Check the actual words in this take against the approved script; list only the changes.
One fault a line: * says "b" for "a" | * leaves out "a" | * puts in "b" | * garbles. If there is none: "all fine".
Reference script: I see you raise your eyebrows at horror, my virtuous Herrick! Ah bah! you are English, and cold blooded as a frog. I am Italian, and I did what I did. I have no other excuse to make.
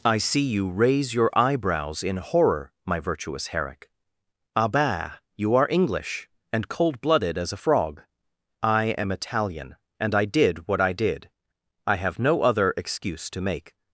* says "in" for "at"